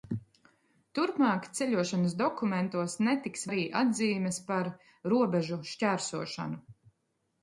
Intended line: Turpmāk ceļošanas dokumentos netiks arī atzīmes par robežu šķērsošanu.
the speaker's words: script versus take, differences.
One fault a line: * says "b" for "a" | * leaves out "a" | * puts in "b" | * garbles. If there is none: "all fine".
all fine